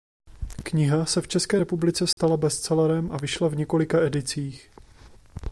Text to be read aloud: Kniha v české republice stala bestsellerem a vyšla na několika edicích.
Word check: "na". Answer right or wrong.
wrong